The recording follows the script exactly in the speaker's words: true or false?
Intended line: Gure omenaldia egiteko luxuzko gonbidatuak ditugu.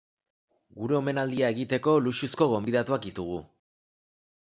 true